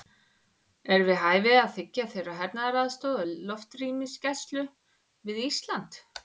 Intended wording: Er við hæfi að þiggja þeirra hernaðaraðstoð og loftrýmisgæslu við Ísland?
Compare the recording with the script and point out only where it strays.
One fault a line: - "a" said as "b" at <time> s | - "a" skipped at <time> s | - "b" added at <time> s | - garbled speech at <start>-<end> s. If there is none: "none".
none